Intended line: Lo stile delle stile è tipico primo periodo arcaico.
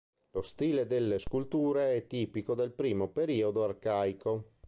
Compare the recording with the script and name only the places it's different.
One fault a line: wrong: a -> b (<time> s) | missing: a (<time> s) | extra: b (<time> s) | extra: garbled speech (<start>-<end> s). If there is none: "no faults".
wrong: stile -> sculture (1.2 s)
extra: del (2.5 s)